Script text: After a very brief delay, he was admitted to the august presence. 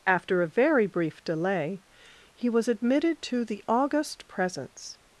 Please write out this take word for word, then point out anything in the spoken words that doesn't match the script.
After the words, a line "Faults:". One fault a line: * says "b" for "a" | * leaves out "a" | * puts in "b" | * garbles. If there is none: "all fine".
After a very brief delay, he was admitted to the august presence.
Faults:
all fine